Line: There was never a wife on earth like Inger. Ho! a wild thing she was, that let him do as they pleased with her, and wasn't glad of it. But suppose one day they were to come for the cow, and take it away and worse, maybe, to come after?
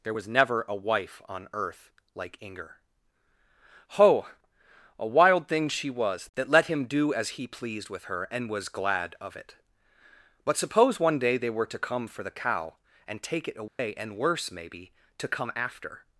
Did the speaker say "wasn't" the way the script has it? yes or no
no